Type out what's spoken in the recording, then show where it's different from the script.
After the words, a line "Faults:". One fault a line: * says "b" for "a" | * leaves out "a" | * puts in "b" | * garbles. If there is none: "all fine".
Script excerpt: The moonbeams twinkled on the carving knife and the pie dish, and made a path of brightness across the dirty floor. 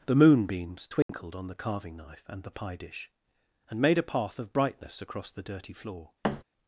The moonbeams twinkled on the carving knife and the pie dish, and made a path of brightness across the dirty floor.
Faults:
all fine